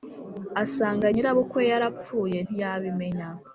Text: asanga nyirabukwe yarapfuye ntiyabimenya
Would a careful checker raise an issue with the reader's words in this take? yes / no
no